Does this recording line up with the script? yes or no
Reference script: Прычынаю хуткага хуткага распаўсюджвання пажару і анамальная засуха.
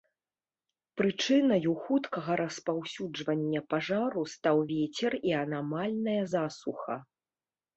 no